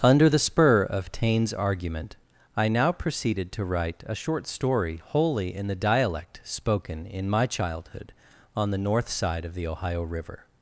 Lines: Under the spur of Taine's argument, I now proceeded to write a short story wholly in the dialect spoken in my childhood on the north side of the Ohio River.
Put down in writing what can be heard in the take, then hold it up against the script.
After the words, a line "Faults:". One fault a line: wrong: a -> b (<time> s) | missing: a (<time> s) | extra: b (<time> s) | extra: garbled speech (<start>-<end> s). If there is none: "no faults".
Under the spur of Taine's argument, I now proceeded to write a short story wholly in the dialect spoken in my childhood on the north side of the Ohio River.
Faults:
no faults